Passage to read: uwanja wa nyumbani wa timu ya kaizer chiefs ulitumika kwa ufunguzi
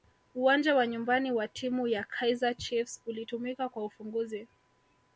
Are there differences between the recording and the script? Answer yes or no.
no